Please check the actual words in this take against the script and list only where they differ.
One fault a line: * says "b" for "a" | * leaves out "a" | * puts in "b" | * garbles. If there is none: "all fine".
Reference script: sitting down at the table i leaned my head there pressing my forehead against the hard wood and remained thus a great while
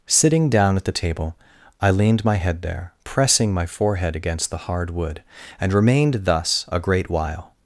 all fine